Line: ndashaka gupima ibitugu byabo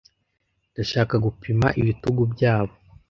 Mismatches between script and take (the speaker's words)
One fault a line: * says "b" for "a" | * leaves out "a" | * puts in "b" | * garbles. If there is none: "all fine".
all fine